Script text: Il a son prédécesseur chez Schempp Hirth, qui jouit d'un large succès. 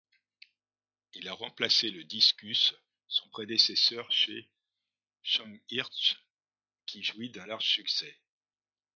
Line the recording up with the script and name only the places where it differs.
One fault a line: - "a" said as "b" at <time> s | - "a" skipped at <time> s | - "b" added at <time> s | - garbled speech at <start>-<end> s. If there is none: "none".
- "remplacé le Discus" added at 1.3 s